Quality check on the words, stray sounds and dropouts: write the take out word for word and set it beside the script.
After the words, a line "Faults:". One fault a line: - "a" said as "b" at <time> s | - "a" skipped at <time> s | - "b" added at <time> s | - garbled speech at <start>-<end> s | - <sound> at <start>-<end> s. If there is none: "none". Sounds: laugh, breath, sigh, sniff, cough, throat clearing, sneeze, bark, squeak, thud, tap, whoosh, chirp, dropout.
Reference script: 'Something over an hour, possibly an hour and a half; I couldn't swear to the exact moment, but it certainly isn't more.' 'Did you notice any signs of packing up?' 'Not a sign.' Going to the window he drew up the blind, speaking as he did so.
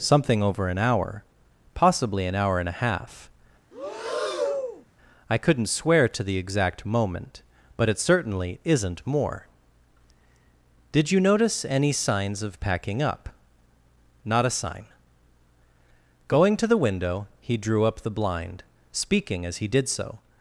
'Something over an hour, possibly an hour and a half; I couldn't swear to the exact moment, but it certainly isn't more.' 'Did you notice any signs of packing up?' 'Not a sign.' Going to the window he drew up the blind, speaking as he did so.
Faults:
- breath at 3.7-4.9 s